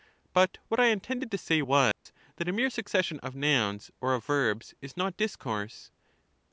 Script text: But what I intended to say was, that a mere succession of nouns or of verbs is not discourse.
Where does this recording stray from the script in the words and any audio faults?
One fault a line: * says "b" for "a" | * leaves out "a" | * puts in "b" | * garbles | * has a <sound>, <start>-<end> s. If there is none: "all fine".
* has a dropout, 1.9-2.1 s